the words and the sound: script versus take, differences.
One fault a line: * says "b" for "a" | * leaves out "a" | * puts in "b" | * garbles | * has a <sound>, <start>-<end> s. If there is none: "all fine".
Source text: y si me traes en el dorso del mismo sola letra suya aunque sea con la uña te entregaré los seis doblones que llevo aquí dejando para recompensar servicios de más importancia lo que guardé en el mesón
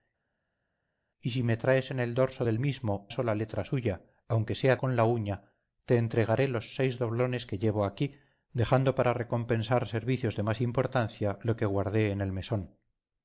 all fine